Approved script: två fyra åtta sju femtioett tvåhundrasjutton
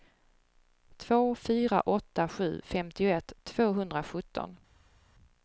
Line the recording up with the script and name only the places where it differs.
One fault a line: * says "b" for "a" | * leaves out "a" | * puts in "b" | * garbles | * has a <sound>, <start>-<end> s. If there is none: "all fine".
all fine